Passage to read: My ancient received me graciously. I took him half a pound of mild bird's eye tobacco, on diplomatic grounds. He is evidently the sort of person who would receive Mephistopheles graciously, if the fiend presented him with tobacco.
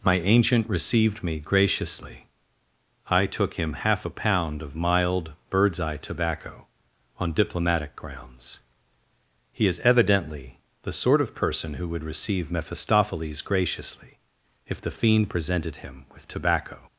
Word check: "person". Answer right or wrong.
right